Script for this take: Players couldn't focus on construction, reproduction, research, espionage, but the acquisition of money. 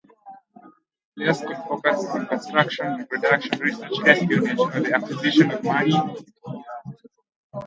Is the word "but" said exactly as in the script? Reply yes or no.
no